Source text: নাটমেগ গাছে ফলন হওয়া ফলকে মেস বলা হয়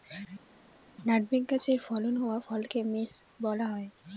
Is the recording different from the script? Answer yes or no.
no